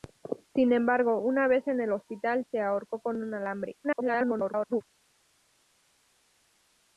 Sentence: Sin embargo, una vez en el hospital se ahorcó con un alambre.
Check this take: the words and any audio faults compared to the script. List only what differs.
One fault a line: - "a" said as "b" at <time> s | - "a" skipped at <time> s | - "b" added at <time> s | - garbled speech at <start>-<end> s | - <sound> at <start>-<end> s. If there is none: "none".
- garbled speech at 3.8-4.8 s